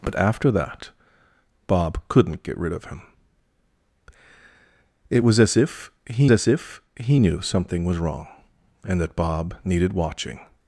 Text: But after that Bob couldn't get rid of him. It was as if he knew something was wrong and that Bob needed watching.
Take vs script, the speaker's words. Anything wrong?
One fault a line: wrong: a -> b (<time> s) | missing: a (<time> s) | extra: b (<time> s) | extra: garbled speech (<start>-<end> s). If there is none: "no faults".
extra: as if he (6.3 s)